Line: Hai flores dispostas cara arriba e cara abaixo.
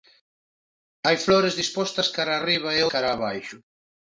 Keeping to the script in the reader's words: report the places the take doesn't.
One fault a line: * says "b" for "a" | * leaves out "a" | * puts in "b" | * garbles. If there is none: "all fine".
all fine